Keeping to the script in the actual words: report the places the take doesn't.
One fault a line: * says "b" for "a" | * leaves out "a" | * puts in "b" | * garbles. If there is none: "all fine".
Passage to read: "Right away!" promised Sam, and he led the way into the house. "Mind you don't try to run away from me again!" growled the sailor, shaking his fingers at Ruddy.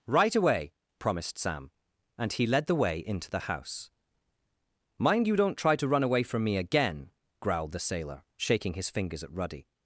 all fine